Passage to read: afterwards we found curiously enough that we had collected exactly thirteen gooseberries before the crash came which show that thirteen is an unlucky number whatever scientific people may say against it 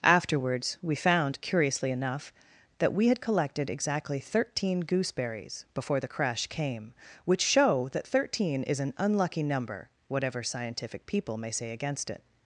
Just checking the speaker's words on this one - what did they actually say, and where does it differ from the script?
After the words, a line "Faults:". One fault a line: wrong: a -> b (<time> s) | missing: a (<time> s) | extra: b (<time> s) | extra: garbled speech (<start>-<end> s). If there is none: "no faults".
afterwards we found curiously enough that we had collected exactly thirteen gooseberries before the crash came which show that thirteen is an unlucky number whatever scientific people may say against it
Faults:
no faults